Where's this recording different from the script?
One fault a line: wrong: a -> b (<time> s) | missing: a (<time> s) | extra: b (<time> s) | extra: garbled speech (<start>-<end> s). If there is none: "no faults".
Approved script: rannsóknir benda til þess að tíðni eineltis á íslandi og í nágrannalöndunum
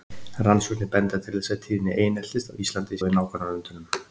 no faults